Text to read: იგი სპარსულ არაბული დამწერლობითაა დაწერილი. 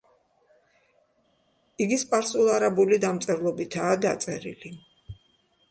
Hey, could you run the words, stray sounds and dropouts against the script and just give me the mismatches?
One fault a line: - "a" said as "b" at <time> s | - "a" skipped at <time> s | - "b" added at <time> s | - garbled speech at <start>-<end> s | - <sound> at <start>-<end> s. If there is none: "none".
none